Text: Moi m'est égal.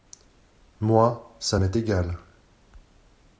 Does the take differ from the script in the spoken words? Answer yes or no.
yes